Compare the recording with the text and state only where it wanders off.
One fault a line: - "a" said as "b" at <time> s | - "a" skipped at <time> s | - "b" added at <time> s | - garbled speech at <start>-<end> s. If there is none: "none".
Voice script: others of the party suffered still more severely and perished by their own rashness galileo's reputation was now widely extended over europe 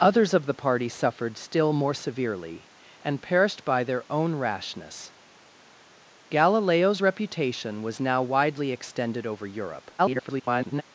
- garbled speech at 10.0-10.8 s